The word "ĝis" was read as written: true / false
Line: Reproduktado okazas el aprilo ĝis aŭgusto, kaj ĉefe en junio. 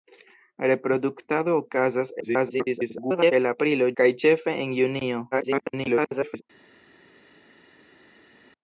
false